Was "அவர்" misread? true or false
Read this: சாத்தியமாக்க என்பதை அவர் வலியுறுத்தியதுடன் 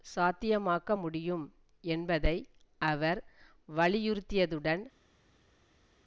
false